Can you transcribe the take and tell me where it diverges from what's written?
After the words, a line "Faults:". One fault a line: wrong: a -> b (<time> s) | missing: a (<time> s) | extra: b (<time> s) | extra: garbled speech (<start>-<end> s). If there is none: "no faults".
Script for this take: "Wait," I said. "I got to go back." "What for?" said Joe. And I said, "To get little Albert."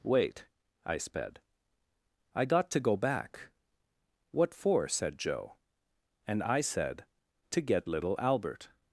"Wait," I sped. "I got to go back." "What for?" said Joe. And I said, "To get little Albert."
Faults:
wrong: said -> sped (1.0 s)